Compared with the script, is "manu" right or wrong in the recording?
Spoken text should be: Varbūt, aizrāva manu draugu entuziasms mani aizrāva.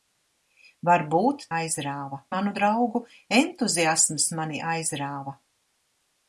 right